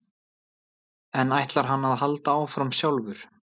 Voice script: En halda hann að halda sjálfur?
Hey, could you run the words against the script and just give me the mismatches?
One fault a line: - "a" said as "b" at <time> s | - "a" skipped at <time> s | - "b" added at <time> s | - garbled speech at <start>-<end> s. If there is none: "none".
- "halda" said as "ætlar" at 1.4 s
- "áfram" added at 2.4 s